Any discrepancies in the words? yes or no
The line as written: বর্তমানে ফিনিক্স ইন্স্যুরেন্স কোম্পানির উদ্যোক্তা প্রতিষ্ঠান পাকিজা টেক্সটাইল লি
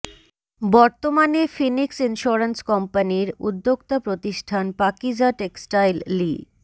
no